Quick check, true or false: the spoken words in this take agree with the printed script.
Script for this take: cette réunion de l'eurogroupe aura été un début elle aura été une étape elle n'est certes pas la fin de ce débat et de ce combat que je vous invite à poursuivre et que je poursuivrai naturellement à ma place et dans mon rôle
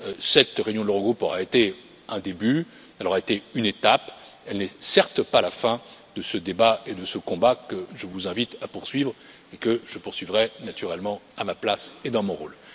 true